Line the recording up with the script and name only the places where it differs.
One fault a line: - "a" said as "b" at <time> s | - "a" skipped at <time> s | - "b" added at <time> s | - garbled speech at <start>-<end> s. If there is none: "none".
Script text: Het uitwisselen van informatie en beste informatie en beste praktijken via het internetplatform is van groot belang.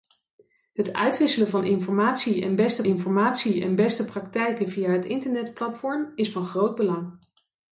none